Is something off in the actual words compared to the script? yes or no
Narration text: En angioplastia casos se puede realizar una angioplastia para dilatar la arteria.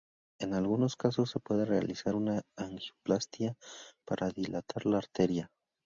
yes